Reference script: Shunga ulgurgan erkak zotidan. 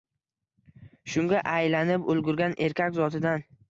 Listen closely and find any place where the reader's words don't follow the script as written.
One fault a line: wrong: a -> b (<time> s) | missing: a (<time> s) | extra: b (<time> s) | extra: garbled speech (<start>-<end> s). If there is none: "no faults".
extra: aylanib (1.5 s)